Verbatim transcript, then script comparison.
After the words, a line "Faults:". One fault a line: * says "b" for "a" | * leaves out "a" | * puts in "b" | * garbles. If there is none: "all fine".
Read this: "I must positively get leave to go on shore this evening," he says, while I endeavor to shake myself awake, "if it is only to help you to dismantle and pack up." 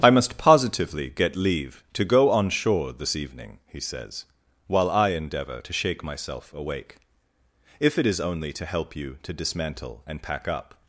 "I must positively get leave to go on shore this evening," he says, while I endeavor to shake myself awake, "if it is only to help you to dismantle and pack up."
Faults:
all fine